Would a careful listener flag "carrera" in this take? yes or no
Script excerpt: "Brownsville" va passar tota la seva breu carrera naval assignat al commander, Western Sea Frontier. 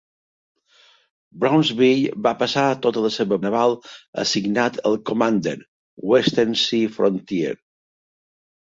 yes